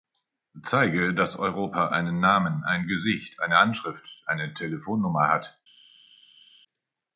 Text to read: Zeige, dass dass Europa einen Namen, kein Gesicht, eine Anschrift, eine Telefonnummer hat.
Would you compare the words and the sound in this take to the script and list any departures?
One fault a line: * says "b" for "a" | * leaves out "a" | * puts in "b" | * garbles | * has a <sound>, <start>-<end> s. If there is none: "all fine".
* leaves out "dass"
* says "ein" for "kein"